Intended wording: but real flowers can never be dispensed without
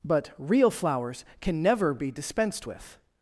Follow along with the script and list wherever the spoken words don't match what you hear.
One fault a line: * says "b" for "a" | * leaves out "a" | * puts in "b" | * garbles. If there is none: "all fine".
* says "with" for "without"